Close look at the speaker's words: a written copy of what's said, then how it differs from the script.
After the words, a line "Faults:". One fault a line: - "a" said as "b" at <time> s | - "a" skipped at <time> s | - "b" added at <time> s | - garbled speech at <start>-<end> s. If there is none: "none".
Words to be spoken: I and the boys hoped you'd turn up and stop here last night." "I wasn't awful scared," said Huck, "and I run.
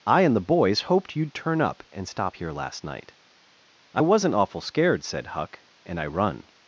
I and the boys hoped you'd turn up and stop here last night." "I wasn't awful scared," said Huck, "and I run.
Faults:
none